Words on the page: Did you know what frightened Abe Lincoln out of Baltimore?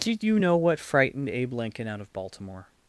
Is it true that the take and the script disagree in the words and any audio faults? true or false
false